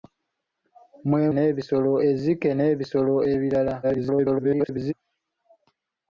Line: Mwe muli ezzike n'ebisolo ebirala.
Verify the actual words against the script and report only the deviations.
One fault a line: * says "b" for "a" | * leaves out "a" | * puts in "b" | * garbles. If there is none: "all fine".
* says "n'ebisolo" for "muli"
* garbles